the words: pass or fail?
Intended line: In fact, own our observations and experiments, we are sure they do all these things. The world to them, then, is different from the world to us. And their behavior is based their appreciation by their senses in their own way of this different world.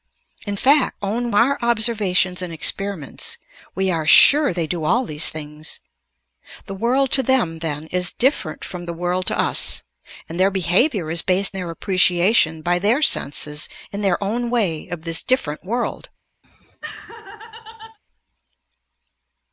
pass